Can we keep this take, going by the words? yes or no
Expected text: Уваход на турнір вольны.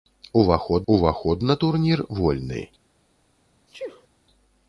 no